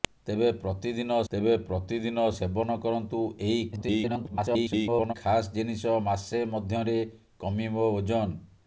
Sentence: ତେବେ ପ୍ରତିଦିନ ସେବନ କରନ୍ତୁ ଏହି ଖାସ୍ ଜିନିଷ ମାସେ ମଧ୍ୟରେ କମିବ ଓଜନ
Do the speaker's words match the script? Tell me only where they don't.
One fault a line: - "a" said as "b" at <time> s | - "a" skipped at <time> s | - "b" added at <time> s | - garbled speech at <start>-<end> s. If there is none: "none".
- "ତେବେ ପ୍ରତିଦିନ" added at 1.3 s
- garbled speech at 3.7-5.1 s